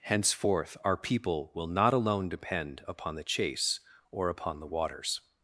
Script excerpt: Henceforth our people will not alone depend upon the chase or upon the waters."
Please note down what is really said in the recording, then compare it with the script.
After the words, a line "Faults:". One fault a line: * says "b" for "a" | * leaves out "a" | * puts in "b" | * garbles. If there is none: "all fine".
Henceforth our people will not alone depend upon the chase or upon the waters."
Faults:
all fine